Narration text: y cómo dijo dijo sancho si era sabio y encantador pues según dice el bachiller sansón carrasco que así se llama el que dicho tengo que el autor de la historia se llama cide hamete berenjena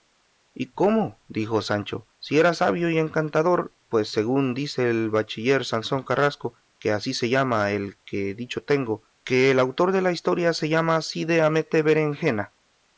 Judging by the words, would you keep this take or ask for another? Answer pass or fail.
fail